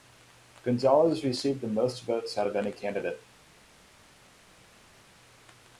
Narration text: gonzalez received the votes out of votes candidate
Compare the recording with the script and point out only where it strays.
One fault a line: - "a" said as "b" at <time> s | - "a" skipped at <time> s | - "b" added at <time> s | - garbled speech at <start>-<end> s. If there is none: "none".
- "most" added at 1.7 s
- "votes" said as "any" at 2.5 s